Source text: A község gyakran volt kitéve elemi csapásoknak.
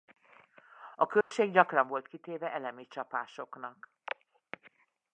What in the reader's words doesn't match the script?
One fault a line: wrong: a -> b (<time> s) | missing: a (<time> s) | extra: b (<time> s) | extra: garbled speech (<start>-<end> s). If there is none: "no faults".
no faults